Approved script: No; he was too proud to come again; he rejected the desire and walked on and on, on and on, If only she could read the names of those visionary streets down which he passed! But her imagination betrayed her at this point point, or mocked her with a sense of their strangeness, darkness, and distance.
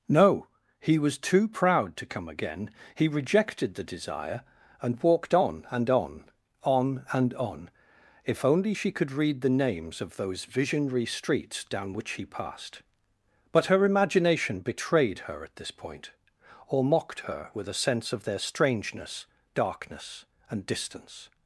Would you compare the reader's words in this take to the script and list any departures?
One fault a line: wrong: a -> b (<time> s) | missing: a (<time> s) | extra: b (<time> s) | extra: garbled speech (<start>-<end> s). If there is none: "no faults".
missing: point (16.1 s)